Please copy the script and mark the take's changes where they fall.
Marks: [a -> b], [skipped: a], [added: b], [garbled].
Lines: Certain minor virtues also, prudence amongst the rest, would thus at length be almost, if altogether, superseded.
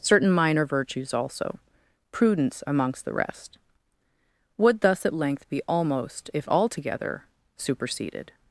Certain minor virtues also, prudence amongst the rest, would thus at length be almost, if altogether, superseded.